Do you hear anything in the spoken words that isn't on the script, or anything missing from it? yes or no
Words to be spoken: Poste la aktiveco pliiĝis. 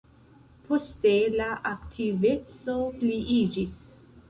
no